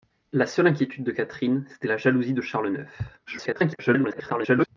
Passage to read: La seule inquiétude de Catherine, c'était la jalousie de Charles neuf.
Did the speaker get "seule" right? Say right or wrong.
right